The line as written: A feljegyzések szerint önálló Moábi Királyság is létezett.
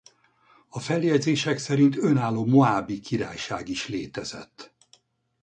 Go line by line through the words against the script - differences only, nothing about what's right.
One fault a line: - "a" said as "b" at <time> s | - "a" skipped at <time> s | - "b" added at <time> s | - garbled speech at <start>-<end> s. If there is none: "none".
none